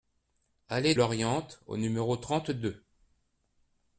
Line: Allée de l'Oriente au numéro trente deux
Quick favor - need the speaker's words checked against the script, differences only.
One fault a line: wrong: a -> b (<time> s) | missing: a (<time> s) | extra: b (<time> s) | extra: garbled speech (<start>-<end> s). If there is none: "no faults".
missing: de (0.9 s)